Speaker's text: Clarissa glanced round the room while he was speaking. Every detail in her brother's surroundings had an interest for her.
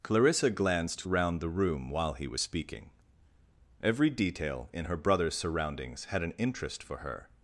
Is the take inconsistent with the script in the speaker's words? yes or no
no